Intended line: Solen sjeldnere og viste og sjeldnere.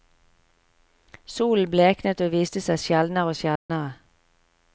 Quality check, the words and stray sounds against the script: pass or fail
fail